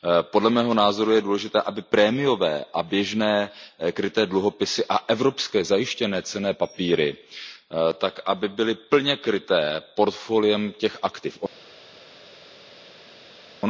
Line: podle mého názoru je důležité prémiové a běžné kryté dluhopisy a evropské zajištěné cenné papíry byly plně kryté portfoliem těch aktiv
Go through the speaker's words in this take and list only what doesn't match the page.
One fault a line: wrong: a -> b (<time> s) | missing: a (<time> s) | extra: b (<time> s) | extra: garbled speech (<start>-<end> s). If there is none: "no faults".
extra: aby (1.6 s)